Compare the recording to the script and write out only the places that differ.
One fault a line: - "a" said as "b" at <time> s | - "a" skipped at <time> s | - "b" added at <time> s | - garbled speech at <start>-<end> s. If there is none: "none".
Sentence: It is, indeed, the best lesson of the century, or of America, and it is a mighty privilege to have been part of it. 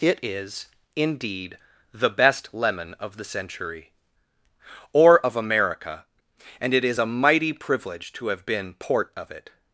- "lesson" said as "lemon" at 2.5 s
- "part" said as "port" at 8.7 s